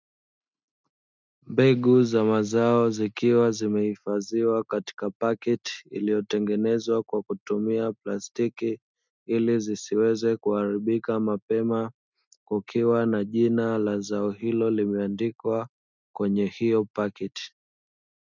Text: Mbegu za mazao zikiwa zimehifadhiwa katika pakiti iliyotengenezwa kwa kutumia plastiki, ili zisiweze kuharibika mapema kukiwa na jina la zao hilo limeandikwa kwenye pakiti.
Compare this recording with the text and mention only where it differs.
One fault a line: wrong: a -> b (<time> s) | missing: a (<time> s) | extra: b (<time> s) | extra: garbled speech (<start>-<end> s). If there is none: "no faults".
extra: hiyo (16.5 s)